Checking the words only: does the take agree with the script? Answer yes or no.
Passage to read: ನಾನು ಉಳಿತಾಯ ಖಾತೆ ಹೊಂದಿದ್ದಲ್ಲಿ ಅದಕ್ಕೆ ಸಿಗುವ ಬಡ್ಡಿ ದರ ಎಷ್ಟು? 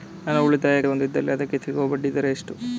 no